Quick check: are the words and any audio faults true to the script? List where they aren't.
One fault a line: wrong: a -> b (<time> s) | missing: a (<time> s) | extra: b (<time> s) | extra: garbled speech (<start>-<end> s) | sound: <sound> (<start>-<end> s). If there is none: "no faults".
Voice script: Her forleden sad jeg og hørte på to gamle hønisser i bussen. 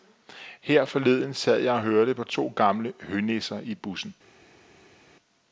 no faults